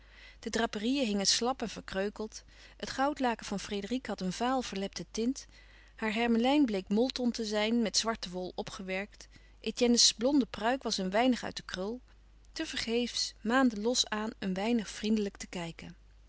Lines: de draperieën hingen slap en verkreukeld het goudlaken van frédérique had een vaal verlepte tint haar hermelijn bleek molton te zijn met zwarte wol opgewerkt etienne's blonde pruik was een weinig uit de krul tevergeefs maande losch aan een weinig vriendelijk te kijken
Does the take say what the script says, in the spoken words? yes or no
yes